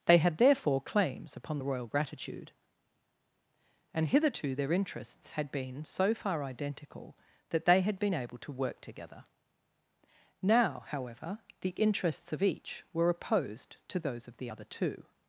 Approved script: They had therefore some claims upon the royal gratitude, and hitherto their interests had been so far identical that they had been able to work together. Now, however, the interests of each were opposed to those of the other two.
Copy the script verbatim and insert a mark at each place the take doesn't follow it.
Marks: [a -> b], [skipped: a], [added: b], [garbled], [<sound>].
They had therefore [skipped: some] claims upon the royal gratitude, and hitherto their interests had been so far identical that they had been able to work together. Now, however, the interests of each were opposed to those of the other two.